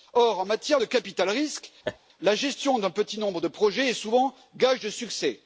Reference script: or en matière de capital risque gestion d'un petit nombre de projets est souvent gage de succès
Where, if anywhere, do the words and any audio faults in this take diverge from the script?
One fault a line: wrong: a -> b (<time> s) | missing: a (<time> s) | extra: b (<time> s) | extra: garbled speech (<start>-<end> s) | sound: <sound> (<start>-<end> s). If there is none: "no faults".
sound: laugh (1.8-2.0 s)
extra: la (2.2 s)